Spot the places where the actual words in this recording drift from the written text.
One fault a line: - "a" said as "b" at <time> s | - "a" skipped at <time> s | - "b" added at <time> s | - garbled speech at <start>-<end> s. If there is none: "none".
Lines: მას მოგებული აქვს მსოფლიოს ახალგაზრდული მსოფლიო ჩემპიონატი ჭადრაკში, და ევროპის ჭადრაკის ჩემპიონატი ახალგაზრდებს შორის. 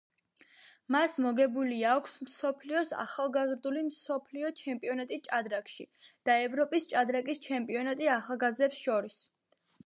none